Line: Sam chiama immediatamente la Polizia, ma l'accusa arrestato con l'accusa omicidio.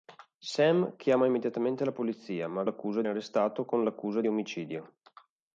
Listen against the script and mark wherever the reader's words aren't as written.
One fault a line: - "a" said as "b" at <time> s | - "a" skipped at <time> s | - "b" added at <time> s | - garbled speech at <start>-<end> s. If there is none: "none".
none